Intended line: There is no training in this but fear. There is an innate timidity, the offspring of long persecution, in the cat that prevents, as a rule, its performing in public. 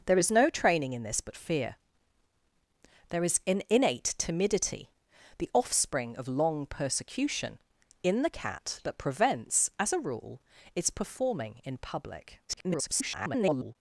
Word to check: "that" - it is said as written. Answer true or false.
true